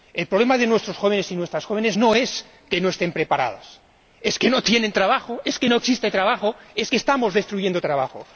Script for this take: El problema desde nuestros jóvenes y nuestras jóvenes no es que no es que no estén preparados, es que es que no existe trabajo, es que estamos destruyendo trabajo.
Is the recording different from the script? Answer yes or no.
yes